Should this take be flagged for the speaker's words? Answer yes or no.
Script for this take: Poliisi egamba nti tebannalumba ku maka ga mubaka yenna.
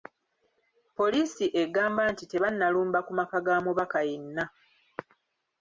no